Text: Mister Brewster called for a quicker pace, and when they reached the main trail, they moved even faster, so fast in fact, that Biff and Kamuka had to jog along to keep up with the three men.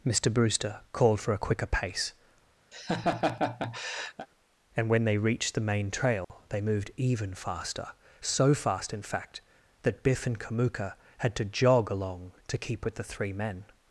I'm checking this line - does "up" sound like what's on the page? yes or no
no